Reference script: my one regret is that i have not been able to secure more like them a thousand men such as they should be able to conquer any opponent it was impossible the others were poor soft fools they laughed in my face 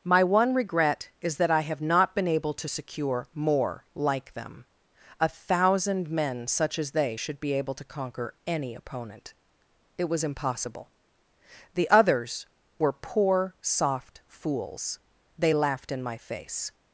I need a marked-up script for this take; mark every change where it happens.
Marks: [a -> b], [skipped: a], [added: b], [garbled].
my one regret is that i have not been able to secure more like them a thousand men such as they should be able to conquer any opponent it was impossible the others were poor soft fools they laughed in my face